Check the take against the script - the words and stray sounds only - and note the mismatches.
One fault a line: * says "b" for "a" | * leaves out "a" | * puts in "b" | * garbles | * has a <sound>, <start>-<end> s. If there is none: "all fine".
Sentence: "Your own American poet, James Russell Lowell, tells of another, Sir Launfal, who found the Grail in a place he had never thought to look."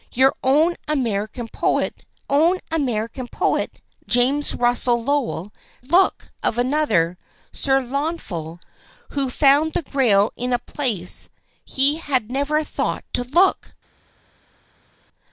* puts in "own American poet"
* says "look" for "tells"